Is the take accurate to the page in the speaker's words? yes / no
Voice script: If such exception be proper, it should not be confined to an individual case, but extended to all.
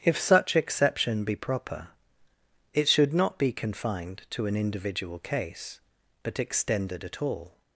no